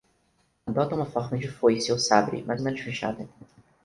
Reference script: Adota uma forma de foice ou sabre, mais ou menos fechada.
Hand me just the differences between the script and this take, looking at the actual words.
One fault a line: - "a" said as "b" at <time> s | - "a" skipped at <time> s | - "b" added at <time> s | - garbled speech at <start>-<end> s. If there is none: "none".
none